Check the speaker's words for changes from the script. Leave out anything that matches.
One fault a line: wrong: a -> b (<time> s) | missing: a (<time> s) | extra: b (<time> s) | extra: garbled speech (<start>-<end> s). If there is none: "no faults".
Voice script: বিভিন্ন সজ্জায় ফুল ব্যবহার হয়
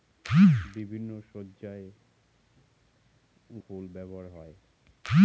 no faults